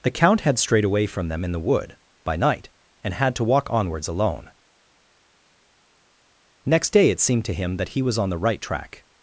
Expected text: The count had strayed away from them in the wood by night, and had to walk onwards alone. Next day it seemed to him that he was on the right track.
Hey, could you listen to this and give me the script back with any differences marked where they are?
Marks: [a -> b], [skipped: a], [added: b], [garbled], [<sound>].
The count had strayed away from them in the wood by night, and had to walk onwards alone. Next day it seemed to him that he was on the right track.